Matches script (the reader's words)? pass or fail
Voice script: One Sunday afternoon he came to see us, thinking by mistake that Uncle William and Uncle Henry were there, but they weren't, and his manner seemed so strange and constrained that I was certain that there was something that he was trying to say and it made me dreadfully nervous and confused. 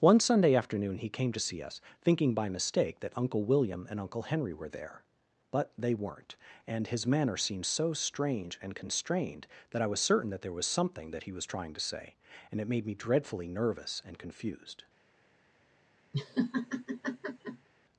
pass